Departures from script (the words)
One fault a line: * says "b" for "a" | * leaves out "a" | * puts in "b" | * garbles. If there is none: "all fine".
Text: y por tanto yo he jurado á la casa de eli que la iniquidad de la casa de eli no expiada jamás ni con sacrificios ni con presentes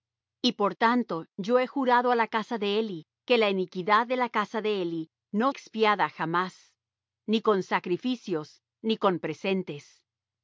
all fine